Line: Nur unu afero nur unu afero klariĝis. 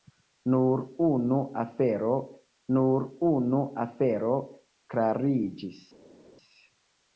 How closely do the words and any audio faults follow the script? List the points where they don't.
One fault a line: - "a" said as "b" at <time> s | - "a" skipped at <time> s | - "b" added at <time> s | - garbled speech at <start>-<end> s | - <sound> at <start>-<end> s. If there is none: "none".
none